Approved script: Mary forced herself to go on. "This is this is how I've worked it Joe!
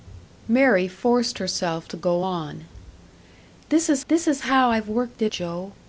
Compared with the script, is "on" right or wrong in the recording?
right